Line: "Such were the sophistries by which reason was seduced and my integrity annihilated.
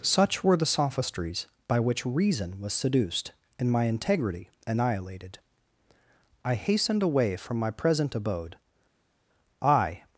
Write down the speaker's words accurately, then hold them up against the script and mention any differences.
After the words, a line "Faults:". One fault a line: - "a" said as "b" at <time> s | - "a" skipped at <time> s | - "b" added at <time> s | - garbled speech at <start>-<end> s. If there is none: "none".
"Such were the sophistries by which reason was seduced and my integrity annihilated. I hastened away from my present abode. I
Faults:
- "I hastened away from my present abode I" added at 6.4 s